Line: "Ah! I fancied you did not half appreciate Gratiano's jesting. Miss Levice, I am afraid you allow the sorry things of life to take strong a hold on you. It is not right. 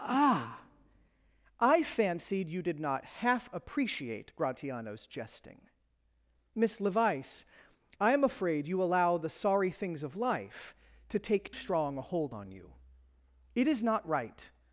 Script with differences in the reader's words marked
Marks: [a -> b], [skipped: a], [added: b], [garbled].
"Ah! I fancied you did not half appreciate Gratiano's jesting. Miss Levice, I am afraid you allow the sorry things of life to take strong a hold on you. It is not right.